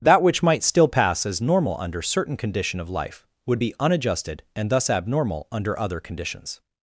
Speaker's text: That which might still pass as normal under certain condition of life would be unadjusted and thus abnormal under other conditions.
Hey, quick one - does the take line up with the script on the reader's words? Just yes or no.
yes